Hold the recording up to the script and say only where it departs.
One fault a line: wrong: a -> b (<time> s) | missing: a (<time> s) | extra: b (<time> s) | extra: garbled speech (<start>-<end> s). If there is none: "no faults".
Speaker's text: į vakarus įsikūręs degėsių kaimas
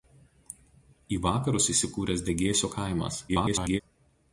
extra: garbled speech (3.3-3.8 s)